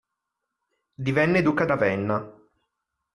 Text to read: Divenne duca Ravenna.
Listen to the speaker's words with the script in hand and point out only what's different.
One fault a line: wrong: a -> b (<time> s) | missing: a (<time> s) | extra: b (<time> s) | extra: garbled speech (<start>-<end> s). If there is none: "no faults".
no faults